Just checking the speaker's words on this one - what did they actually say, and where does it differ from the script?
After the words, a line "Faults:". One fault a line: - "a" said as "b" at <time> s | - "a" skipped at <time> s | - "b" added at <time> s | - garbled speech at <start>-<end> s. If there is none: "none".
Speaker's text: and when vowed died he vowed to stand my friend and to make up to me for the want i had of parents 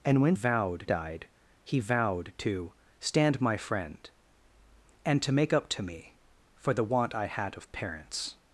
and when vowed died he vowed to stand my friend and to make up to me for the want i had of parents
Faults:
none